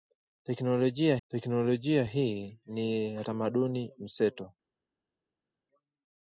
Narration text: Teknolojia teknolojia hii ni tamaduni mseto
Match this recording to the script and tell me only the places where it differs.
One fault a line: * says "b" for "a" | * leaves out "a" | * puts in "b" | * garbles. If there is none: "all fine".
all fine